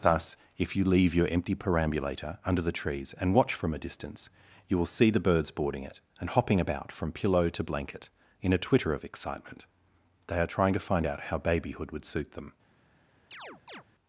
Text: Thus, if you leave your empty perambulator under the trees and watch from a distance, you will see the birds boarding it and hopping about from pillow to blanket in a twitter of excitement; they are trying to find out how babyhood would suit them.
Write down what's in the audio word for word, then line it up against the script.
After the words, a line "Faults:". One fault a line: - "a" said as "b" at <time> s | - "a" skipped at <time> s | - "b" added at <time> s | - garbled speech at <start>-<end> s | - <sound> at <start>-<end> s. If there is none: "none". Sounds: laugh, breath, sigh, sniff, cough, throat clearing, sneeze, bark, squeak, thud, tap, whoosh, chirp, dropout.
Thus, if you leave your empty perambulator under the trees and watch from a distance, you will see the birds boarding it and hopping about from pillow to blanket in a twitter of excitement; they are trying to find out how babyhood would suit them.
Faults:
- chirp at 13.3-13.8 s